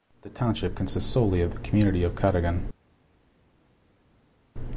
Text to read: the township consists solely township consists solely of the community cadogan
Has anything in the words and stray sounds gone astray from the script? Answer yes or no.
yes